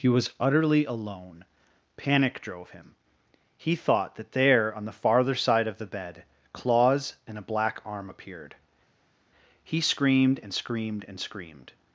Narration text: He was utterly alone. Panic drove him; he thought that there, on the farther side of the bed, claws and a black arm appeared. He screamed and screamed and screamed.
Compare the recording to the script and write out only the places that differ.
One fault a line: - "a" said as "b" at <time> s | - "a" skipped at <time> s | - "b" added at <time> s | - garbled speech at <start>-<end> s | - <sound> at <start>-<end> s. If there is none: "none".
none